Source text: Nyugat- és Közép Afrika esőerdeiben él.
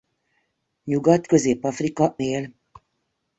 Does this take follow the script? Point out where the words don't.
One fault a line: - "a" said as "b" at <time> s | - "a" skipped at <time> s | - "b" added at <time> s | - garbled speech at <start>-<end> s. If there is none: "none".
- "és" skipped at 1.3 s
- "esőerdeiben" skipped at 2.2 s